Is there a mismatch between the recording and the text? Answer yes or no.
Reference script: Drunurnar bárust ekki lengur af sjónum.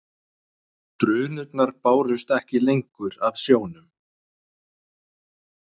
no